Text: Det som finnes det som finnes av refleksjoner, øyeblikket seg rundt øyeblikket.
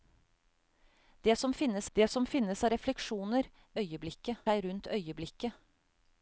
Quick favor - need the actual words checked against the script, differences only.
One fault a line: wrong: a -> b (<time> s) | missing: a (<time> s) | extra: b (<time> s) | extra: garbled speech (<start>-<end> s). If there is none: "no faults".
no faults